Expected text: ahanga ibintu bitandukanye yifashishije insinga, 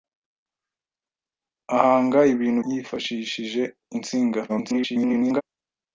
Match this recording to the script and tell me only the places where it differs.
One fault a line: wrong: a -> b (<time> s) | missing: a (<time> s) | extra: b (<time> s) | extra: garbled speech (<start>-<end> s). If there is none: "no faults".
missing: bitandukanye (2.6 s)
extra: garbled speech (4.5-5.4 s)